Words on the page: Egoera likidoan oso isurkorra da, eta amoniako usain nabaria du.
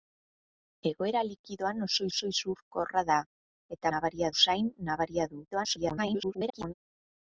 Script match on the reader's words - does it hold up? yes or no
no